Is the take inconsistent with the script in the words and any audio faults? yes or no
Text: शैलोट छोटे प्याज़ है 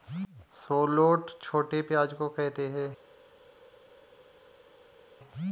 yes